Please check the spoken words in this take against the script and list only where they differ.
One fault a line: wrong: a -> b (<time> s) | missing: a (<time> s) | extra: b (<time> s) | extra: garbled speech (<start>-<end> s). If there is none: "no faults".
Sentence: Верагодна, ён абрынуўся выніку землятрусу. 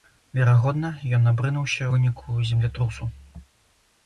no faults